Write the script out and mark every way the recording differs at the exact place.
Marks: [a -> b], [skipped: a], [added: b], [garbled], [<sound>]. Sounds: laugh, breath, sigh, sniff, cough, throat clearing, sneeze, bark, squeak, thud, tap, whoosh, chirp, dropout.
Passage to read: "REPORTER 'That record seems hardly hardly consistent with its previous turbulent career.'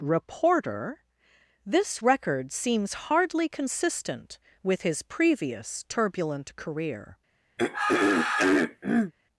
"REPORTER ['That -> This] record seems hardly [skipped: hardly] consistent with [its -> his] previous turbulent career.' [throat clearing]